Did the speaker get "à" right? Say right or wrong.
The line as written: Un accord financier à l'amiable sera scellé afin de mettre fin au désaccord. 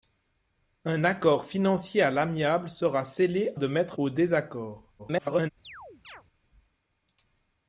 right